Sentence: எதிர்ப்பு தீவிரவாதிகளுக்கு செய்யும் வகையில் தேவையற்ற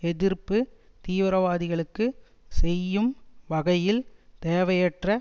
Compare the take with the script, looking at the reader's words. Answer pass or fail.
pass